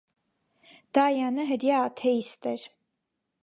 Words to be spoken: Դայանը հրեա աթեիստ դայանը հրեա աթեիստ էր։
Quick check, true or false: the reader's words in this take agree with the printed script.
false